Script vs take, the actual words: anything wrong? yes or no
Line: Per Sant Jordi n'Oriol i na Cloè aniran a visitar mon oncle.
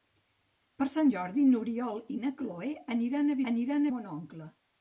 yes